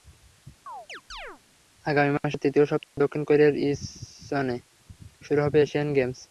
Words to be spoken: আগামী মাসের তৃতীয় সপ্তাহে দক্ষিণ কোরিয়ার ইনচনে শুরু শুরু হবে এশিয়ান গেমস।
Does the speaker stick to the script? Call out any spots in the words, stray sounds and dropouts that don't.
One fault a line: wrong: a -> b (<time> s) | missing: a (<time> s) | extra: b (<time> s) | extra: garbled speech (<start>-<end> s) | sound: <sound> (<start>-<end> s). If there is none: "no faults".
sound: chirp (0.7-1.4 s)
sound: dropout (2.8-3.0 s)
missing: শুরু (5.4 s)